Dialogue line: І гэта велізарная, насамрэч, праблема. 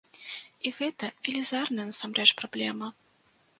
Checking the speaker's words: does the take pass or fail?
pass